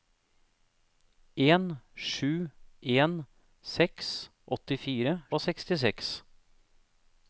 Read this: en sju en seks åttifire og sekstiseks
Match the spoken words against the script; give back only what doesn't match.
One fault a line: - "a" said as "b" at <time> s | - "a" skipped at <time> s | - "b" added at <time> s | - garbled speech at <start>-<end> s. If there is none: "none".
none